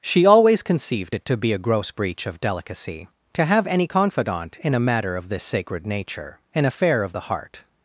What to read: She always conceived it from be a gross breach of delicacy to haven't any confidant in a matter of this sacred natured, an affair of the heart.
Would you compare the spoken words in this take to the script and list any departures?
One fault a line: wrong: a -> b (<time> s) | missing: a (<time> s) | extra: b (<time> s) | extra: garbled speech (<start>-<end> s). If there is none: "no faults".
wrong: from -> to (1.2 s)
wrong: haven't -> have (3.4 s)
wrong: natured -> nature (5.9 s)